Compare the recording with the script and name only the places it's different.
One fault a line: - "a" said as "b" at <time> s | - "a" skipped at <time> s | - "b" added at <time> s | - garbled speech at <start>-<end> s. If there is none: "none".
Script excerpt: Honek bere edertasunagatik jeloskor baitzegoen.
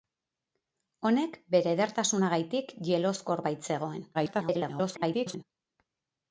- garbled speech at 4.1-5.4 s